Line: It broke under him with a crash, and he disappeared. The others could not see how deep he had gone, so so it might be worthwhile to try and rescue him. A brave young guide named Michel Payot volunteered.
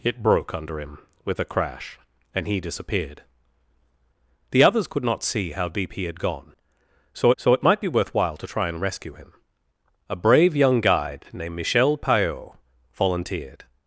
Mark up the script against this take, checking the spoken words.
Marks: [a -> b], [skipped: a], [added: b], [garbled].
It broke under him with a crash, and he disappeared. The others could not see how deep he had gone, so so it might be worthwhile to try and rescue him. A brave young guide named Michel Payot volunteered.